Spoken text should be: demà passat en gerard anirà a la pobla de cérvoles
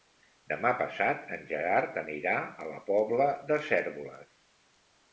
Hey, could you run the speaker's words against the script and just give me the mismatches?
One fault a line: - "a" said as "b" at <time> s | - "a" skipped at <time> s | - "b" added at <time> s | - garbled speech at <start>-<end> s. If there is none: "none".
none